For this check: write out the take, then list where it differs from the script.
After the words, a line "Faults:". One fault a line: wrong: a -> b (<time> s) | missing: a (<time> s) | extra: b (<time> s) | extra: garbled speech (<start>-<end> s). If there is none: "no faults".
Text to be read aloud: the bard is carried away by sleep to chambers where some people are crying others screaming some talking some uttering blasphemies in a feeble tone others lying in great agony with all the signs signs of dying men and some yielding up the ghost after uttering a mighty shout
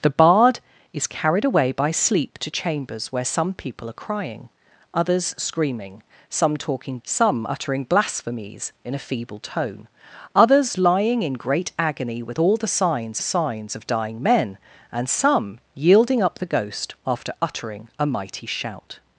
the bard is carried away by sleep to chambers where some people are crying others screaming some talking some uttering blasphemies in a feeble tone others lying in great agony with all the signs signs of dying men and some yielding up the ghost after uttering a mighty shout
Faults:
no faults